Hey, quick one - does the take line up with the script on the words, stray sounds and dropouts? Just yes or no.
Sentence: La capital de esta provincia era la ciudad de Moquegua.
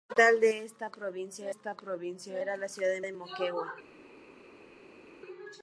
no